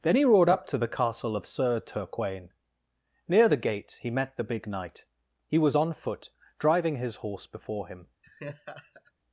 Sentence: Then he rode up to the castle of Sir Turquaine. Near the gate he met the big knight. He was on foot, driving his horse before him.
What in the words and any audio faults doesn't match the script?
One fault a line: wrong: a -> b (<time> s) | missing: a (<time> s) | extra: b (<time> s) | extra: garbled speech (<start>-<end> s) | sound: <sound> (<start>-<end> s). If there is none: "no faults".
sound: laugh (8.2-9.1 s)